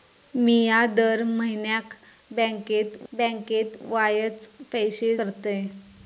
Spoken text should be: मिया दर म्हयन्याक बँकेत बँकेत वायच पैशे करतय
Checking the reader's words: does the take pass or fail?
pass